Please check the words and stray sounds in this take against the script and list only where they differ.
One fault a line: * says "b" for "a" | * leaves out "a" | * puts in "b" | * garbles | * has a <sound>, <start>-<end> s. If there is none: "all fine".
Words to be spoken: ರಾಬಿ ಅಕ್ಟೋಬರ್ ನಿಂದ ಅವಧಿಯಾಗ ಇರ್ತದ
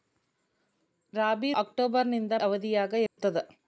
* has a dropout, 3.1-3.2 s